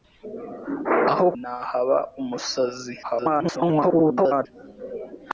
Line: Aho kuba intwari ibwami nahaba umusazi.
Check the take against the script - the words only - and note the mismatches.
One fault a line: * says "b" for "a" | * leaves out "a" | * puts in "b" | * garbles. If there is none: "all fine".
* leaves out "kuba intwari ibwami"
* garbles